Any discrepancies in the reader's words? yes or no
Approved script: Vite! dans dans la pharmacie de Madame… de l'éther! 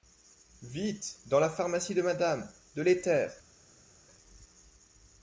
yes